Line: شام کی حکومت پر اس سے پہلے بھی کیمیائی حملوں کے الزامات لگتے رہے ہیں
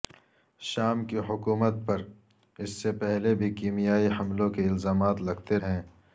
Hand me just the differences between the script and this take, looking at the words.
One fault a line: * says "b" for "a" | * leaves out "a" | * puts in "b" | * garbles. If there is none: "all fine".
* leaves out "رہے"